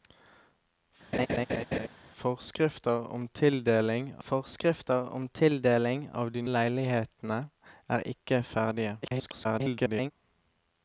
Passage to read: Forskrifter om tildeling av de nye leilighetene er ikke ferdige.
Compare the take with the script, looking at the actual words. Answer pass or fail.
fail